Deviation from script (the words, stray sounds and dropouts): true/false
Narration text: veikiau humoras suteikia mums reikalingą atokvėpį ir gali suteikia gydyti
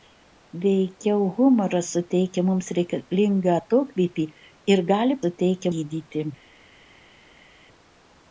false